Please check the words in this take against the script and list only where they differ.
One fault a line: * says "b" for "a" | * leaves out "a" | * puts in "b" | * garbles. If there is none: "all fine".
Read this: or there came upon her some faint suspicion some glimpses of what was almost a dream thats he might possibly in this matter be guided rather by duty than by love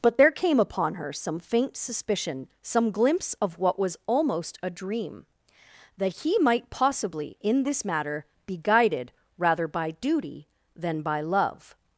* says "but" for "or"
* says "glimpse" for "glimpses"
* says "that" for "thats"